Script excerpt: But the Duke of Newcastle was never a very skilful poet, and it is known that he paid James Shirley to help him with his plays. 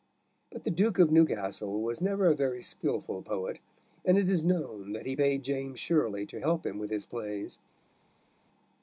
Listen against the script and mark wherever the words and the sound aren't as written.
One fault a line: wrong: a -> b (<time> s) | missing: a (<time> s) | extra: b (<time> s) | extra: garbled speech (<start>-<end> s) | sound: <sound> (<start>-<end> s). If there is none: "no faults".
no faults